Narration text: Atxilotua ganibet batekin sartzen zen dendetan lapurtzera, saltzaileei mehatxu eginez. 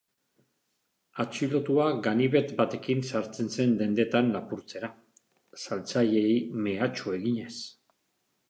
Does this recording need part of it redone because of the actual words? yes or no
no